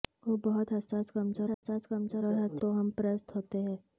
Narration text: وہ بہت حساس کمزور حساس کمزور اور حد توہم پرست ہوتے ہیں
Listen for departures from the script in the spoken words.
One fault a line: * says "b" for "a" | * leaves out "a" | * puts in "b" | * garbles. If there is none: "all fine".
all fine